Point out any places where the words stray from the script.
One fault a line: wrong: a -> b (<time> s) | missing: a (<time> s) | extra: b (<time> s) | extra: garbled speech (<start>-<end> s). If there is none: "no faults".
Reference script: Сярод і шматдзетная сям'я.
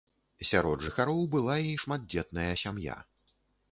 extra: жыхароў была (0.8 s)